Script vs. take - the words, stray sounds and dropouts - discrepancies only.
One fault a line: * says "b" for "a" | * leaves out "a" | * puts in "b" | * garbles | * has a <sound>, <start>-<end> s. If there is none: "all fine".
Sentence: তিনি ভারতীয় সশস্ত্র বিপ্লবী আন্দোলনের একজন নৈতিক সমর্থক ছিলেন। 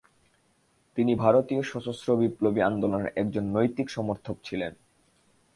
all fine